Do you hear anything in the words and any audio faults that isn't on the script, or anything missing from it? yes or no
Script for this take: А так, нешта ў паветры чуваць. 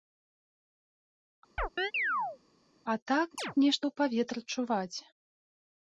yes